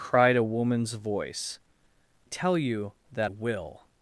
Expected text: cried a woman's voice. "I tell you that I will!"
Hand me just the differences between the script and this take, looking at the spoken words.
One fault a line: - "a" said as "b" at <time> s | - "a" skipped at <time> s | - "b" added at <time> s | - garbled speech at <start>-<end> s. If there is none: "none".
- "I" skipped at 1.6 s
- "I" skipped at 3.3 s